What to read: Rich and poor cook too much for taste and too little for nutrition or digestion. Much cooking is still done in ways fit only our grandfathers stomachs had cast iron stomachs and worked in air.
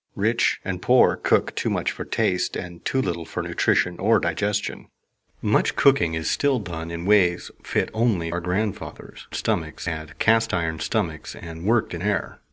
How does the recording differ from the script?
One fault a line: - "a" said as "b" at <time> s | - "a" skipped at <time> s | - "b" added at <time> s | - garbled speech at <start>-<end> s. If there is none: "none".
none